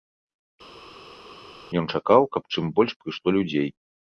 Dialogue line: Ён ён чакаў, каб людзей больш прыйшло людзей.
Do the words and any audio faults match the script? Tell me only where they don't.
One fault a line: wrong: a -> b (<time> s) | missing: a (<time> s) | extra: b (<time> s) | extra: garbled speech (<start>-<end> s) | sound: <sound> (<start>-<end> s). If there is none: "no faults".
missing: ён (1.9 s)
wrong: людзей -> чым (2.6 s)